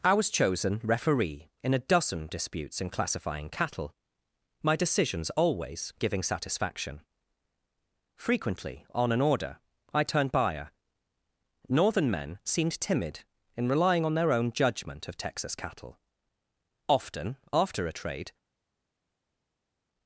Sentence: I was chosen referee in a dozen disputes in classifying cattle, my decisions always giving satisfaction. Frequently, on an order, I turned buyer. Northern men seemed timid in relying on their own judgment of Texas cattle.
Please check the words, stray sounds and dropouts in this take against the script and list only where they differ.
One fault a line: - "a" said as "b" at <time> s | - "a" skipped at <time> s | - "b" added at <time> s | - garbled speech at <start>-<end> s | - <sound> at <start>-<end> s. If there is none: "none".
- "Often after a trade" added at 16.9 s